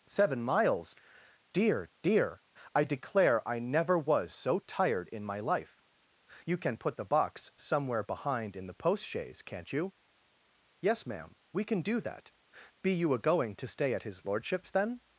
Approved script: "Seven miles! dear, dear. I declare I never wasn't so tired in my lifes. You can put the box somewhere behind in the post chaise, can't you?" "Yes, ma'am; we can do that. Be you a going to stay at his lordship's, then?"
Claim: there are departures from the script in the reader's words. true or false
true